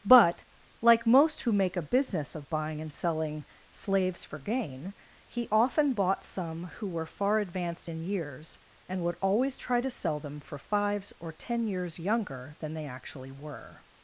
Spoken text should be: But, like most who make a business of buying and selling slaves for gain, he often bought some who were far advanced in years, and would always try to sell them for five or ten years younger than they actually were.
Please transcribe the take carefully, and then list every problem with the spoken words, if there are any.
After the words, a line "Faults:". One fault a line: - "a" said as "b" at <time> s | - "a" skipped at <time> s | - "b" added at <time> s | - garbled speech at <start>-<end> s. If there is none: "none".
But, like most who make a business of buying and selling slaves for gain, he often bought some who were far advanced in years, and would always try to sell them for fives or ten years younger than they actually were.
Faults:
- "five" said as "fives" at 10.6 s